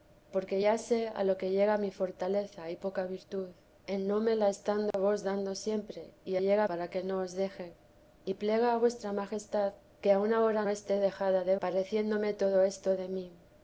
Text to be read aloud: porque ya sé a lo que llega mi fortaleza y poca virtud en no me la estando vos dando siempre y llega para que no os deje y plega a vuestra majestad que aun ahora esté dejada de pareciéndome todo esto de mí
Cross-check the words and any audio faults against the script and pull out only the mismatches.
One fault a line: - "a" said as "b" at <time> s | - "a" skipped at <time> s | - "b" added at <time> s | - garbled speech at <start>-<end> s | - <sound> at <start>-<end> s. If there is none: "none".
- dropout at 4.9-4.9 s